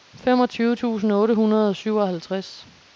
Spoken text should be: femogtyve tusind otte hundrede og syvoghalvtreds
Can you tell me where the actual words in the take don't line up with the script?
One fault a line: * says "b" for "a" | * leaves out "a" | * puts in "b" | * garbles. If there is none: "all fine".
all fine